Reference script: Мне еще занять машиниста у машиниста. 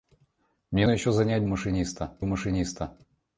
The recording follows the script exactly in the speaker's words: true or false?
true